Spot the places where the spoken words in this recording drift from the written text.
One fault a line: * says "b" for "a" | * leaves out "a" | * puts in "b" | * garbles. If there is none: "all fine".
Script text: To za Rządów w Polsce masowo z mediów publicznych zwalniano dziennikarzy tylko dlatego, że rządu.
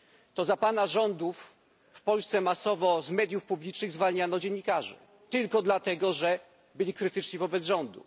* puts in "Pana"
* puts in "byli krytyczni wobec"